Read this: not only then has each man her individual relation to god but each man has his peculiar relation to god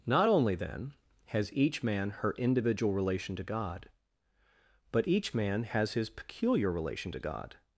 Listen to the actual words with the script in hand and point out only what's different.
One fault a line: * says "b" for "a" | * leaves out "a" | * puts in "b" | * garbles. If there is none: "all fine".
all fine